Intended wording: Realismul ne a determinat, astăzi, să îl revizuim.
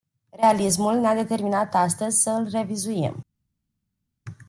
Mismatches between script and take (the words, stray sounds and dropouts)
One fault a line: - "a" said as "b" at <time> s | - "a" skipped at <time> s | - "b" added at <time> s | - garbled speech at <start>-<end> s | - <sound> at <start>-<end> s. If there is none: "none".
none